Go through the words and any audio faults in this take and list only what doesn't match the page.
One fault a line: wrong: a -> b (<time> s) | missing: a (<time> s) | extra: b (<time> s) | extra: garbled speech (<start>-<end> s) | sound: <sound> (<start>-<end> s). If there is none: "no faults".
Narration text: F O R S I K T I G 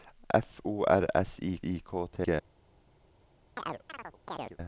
extra: I (1.6 s)
missing: I (2.2 s)
sound: chirp (3.6-4.6 s)